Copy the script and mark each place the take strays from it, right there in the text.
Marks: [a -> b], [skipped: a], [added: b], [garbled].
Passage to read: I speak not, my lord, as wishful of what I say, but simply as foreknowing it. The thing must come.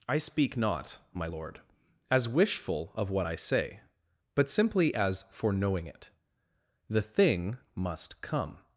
I speak not, my lord, as wishful of what I say, but simply as foreknowing it. The thing must come.